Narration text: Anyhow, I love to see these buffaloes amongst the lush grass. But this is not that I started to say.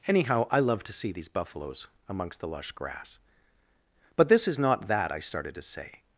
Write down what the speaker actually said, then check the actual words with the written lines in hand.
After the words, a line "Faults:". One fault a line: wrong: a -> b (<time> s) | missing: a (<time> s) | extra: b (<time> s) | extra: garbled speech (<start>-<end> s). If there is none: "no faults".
Anyhow, I love to see these buffaloes amongst the lush grass. But this is not that I started to say.
Faults:
no faults